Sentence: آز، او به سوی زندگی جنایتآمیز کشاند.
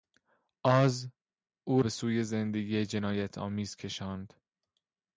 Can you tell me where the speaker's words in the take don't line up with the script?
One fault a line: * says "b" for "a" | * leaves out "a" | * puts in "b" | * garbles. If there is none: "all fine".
all fine